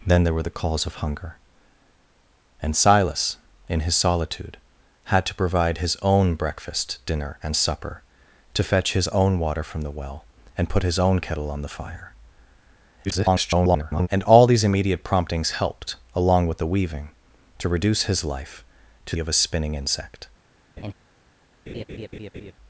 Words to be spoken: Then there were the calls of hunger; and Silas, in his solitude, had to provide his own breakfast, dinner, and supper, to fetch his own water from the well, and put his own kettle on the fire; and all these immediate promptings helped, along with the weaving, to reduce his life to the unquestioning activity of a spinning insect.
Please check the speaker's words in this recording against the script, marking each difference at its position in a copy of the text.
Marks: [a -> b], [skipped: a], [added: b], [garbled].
Then there were the calls of hunger; and Silas, in his solitude, had to provide his own breakfast, dinner, and supper, to fetch his own water from the well, and put his own kettle on the fire; [garbled] and all these immediate promptings helped, along with the weaving, to reduce his life to [skipped: the unquestioning activity] of a spinning insect.